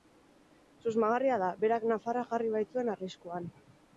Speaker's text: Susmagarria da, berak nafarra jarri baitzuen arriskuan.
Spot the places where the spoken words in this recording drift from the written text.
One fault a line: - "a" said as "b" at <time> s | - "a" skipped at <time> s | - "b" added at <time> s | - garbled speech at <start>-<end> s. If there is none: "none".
none